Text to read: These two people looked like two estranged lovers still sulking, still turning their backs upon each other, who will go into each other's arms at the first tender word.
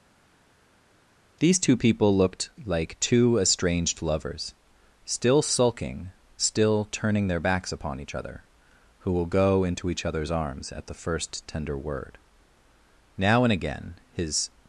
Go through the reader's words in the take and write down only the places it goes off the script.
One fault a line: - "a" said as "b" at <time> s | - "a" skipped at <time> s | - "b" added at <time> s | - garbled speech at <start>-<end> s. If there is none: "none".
- "Now and again his" added at 13.2 s